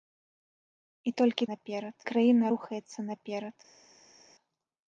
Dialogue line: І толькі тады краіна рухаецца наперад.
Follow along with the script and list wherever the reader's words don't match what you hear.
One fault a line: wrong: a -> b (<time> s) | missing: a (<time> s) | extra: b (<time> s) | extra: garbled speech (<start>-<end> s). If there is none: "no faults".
wrong: тады -> наперад (1.5 s)